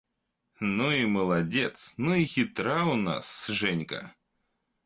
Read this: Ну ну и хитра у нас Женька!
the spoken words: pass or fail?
fail